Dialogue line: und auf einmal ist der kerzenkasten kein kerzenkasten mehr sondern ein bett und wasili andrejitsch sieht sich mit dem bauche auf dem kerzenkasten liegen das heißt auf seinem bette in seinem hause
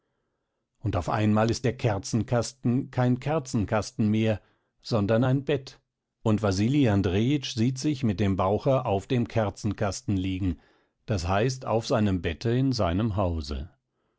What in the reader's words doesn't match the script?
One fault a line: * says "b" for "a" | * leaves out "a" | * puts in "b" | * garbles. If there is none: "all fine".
all fine